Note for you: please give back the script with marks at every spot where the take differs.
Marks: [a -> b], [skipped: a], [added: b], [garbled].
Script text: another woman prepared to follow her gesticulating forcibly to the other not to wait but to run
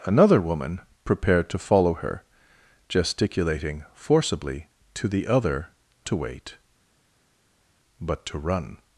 another woman prepared to follow her gesticulating forcibly to the other [skipped: not] to wait but to run